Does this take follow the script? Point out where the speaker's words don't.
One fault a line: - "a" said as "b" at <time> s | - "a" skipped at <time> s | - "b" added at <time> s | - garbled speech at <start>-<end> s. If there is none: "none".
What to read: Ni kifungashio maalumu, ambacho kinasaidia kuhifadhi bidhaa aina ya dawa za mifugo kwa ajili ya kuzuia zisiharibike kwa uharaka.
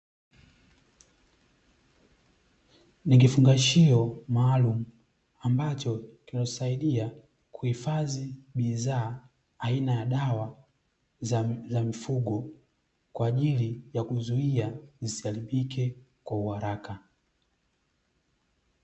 none